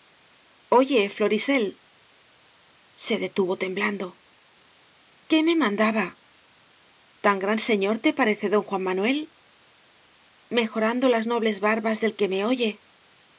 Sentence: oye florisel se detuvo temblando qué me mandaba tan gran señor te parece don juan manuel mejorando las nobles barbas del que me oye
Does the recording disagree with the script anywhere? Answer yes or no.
no